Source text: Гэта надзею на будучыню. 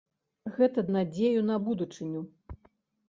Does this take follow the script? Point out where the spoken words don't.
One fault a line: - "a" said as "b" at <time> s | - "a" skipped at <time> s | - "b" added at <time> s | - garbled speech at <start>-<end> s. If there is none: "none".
none